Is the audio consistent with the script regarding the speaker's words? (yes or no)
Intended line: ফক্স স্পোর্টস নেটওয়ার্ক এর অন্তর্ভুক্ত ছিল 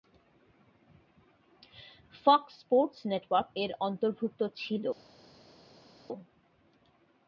yes